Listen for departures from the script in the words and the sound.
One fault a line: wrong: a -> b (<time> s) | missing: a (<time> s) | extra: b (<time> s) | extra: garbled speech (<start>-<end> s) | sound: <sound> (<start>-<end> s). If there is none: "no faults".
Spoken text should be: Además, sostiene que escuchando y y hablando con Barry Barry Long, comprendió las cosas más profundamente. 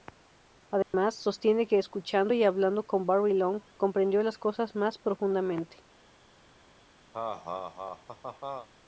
sound: dropout (0.8-0.9 s)
missing: y (2.4 s)
missing: Barry (3.3 s)
sound: laugh (7.1-8.7 s)